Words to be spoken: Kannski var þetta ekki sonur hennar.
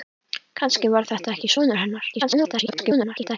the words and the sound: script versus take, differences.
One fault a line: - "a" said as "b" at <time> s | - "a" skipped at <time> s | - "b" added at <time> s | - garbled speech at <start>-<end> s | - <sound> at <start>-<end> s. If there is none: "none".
- garbled speech at 2.1-3.4 s